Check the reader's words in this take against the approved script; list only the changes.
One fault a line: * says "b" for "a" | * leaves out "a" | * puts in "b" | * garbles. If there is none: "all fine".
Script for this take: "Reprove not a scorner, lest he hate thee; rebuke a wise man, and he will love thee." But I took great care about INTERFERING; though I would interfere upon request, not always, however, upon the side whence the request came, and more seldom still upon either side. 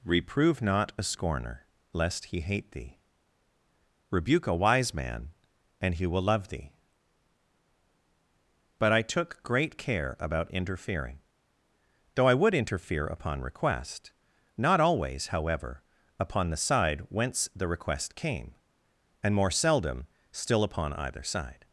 all fine